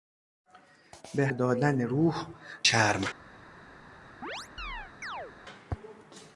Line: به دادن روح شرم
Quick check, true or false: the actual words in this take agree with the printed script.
true